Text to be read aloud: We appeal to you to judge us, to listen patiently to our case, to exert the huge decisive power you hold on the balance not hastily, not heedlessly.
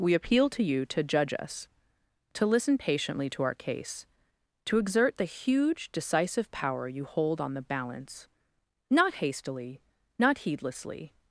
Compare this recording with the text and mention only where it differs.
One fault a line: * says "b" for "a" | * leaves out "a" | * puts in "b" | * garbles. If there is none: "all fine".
all fine